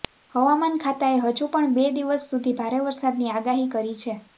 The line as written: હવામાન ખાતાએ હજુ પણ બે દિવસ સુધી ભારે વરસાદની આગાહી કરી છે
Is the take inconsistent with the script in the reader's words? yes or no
no